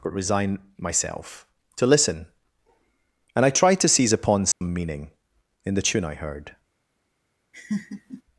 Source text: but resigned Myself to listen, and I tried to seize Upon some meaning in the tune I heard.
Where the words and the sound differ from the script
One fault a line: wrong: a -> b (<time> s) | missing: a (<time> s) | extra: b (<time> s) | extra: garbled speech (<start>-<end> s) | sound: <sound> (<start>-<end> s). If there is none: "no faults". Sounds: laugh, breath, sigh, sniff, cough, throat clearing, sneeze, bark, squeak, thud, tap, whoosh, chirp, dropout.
wrong: resigned -> resign (0.1 s)
sound: dropout (4.5-4.6 s)
sound: laugh (7.5-8.2 s)